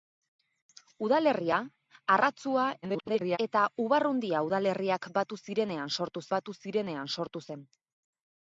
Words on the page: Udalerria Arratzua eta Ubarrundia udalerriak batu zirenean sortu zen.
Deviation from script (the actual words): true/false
true